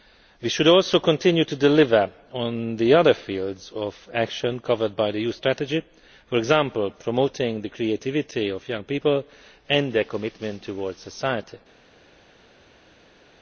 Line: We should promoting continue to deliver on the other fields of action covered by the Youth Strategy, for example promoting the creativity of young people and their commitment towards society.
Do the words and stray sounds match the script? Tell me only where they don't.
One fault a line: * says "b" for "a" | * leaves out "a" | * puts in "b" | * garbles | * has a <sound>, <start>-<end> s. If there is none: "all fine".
* says "also" for "promoting"